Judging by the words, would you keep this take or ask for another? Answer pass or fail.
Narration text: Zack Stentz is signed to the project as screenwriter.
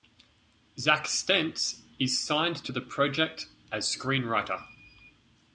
pass